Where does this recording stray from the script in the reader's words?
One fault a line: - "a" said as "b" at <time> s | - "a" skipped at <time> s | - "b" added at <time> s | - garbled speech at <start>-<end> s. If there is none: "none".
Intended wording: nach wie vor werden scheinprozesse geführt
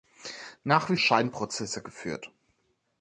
- "vor werden" skipped at 0.9 s